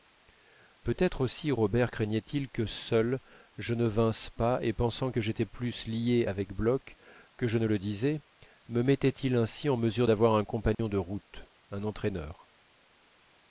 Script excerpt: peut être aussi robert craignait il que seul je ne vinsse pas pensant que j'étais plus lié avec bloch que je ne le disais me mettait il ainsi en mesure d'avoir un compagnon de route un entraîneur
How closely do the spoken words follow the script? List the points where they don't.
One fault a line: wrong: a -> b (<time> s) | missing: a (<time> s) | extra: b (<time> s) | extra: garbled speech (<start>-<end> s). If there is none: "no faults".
extra: et (4.6 s)